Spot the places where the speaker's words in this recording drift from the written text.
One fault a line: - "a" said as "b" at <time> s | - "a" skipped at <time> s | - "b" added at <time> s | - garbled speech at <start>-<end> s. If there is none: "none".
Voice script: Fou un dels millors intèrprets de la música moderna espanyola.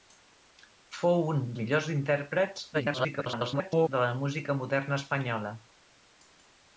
- "dels" skipped at 1.4 s
- garbled speech at 2.7-3.9 s